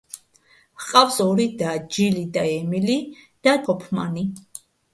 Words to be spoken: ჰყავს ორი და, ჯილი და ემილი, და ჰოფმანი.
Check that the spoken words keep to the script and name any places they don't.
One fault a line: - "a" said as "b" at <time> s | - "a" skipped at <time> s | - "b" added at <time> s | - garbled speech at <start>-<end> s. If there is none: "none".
none